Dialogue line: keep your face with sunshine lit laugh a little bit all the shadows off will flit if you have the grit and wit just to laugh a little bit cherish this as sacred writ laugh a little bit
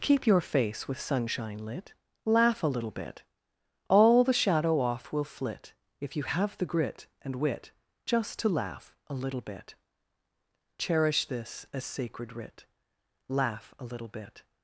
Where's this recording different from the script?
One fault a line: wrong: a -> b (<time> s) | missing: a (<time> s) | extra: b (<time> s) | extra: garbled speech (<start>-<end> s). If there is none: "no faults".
wrong: shadows -> shadow (4.3 s)